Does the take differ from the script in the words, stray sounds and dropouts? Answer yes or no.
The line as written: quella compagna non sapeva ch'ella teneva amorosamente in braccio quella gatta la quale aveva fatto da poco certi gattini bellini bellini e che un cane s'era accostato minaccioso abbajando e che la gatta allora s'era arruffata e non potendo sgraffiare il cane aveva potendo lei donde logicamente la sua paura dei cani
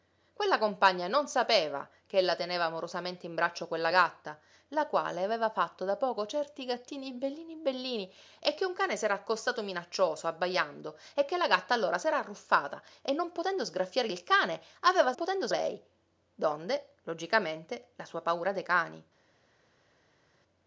no